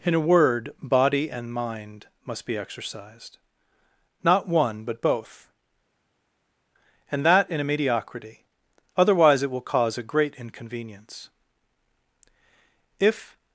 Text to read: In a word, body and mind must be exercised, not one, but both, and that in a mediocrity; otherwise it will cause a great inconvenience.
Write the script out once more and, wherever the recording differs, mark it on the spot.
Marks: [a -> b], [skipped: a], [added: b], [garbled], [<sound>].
In a word, body and mind must be exercised, not one, but both, and that in a mediocrity; otherwise it will cause a great inconvenience. [added: If]